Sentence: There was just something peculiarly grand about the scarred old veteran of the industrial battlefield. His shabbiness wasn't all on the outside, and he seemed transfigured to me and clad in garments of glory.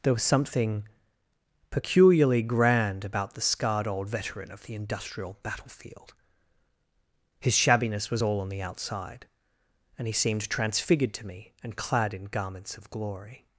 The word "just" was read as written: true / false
false